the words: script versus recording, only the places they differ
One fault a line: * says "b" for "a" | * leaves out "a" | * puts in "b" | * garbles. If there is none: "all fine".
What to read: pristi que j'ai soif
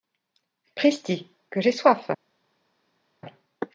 all fine